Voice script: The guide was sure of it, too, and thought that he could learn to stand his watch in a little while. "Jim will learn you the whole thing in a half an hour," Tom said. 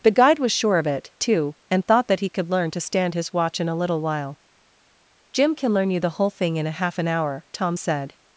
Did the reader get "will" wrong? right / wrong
wrong